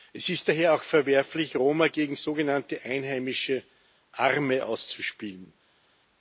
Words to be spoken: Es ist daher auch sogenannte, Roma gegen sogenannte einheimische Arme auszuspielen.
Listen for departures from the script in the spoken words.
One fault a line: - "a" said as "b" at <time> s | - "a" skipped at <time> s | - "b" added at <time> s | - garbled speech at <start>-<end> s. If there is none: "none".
- "sogenannte" said as "verwerflich" at 0.8 s